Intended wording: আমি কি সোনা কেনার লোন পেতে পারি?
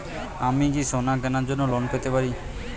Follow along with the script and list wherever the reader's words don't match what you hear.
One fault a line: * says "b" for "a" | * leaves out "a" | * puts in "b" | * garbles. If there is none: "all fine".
* puts in "জন্য"